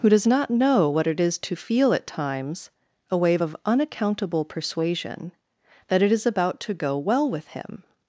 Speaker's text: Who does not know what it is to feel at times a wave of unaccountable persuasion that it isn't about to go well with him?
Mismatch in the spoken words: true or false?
true